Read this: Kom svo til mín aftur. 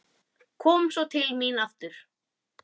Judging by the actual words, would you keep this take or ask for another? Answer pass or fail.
pass